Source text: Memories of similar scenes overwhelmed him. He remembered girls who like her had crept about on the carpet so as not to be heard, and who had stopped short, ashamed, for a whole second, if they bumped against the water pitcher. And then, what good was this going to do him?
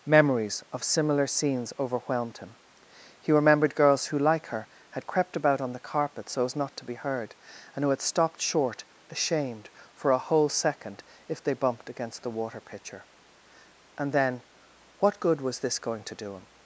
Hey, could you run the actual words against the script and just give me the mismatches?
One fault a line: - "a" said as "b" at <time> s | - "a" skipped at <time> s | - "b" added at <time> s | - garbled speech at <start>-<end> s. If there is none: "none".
none